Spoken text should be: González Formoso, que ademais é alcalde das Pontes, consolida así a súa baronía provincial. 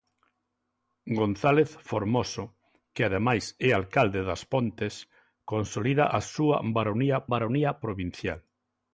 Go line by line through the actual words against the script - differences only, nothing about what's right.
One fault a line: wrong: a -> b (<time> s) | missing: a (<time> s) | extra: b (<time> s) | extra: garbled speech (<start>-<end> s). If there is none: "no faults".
missing: así (6.0 s)
extra: baronía (7.3 s)